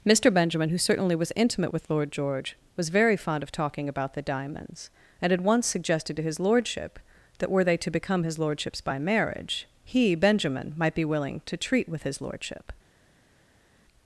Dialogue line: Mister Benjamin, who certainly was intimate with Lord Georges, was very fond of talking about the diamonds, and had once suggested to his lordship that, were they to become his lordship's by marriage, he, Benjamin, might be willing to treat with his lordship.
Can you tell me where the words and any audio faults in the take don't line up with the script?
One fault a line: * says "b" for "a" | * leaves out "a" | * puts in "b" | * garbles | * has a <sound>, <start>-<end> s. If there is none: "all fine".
* says "George" for "Georges"